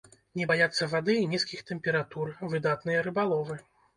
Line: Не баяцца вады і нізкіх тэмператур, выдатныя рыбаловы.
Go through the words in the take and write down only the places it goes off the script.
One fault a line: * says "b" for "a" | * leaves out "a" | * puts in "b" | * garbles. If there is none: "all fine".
all fine